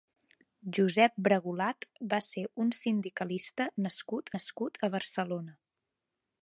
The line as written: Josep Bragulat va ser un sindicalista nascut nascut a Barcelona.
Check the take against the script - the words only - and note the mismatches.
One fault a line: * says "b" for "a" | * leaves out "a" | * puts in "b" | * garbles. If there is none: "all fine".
all fine